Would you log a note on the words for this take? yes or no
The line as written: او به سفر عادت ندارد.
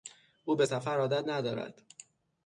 no